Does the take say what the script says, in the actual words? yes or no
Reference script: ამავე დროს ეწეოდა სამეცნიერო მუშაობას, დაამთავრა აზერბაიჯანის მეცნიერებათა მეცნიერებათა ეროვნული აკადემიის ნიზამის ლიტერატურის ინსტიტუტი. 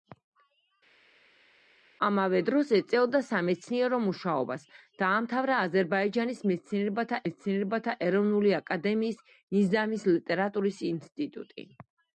yes